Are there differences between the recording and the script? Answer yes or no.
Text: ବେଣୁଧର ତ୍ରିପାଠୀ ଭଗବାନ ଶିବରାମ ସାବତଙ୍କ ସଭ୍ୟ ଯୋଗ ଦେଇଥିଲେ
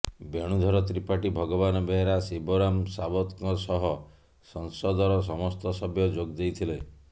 yes